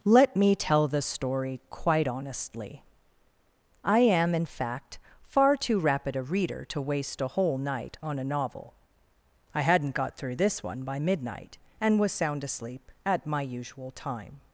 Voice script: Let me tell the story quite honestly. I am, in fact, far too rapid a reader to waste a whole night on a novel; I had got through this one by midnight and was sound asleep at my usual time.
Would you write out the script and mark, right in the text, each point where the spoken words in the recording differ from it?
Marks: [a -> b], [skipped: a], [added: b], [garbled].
Let me tell the story quite honestly. I am, in fact, far too rapid a reader to waste a whole night on a novel; I [had -> hadn't] got through this one by midnight and was sound asleep at my usual time.